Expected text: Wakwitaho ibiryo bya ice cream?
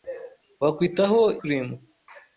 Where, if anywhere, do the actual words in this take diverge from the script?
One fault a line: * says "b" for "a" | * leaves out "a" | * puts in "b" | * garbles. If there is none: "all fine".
* leaves out "ibiryo bya ice"